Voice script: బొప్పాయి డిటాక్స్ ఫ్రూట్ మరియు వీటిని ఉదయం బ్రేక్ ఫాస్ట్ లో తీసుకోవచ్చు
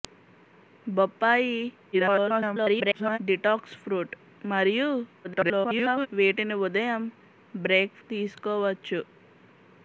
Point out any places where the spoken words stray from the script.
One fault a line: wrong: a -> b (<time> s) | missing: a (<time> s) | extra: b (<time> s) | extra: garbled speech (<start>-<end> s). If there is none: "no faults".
extra: garbled speech (1.9-3.2 s)
extra: garbled speech (5.2-6.1 s)
missing: ఫాస్ట్ లో (8.0 s)